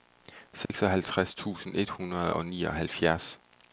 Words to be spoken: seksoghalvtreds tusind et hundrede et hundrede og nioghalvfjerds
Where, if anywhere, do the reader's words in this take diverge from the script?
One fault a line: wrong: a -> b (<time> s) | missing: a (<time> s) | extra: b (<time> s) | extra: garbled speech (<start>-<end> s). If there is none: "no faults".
missing: et hundrede (2.4 s)